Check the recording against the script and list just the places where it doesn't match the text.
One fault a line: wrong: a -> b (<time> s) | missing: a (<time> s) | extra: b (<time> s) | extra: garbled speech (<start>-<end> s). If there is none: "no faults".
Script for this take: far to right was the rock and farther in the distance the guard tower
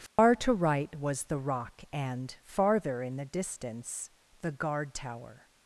no faults